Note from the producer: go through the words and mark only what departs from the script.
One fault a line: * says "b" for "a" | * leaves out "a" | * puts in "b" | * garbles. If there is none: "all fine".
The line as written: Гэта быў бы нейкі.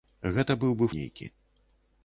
all fine